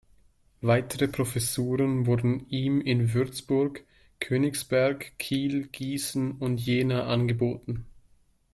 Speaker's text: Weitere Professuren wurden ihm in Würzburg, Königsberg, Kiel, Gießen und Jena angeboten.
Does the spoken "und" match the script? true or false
true